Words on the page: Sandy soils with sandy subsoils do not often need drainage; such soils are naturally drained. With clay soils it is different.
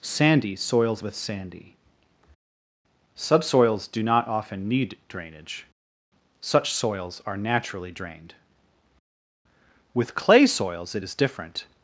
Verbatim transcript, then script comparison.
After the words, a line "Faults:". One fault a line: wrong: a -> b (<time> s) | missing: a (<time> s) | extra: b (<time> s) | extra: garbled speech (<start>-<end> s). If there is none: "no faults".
Sandy soils with sandy subsoils do not often need drainage; such soils are naturally drained. With clay soils it is different.
Faults:
no faults